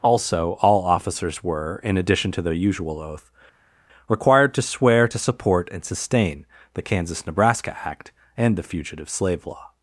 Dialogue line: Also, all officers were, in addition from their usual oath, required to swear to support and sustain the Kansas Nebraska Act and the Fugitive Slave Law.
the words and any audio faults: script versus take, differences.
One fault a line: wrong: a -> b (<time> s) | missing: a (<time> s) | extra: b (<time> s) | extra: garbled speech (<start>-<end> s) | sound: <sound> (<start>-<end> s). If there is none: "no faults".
wrong: from -> to (2.3 s)